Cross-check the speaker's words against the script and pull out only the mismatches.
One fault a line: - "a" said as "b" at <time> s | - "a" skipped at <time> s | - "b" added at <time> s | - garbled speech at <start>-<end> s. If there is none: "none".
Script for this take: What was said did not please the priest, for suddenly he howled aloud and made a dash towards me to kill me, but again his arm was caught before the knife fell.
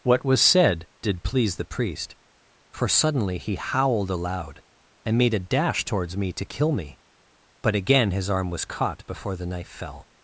- "not" skipped at 1.2 s